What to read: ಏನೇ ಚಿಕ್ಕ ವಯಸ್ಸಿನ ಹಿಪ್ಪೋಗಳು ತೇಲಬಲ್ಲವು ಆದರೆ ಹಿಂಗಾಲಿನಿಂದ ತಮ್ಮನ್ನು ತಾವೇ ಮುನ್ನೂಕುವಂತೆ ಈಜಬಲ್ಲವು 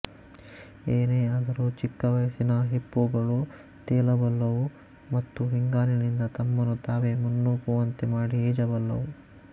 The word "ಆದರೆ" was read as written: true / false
false